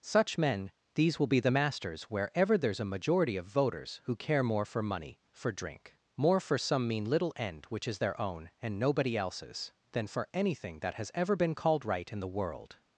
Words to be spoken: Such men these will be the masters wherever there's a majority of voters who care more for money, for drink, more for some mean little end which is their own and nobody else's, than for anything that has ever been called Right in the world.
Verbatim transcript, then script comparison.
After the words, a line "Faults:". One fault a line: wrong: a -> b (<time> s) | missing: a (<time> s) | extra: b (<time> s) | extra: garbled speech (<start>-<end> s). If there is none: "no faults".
Such men these will be the masters wherever there's a majority of voters who care more for money, for drink, more for some mean little end which is their own and nobody else's, than for anything that has ever been called Right in the world.
Faults:
no faults